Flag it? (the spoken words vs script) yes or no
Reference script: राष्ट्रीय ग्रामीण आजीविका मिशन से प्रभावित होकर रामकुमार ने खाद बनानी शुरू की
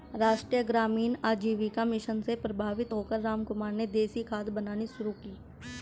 yes